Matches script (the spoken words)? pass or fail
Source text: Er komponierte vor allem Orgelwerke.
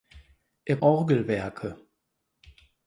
fail